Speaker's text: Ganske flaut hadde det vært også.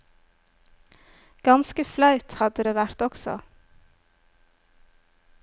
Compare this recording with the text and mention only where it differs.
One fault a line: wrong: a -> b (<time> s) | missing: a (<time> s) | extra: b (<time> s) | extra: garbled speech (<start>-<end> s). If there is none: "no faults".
no faults